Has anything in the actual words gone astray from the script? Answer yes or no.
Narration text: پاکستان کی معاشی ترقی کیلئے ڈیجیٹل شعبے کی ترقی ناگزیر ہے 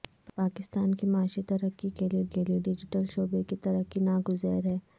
yes